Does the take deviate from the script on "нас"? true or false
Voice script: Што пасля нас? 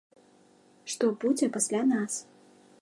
false